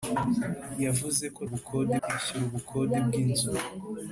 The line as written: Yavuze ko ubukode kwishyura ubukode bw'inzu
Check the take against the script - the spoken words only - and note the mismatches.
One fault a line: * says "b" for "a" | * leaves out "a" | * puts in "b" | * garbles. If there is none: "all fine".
all fine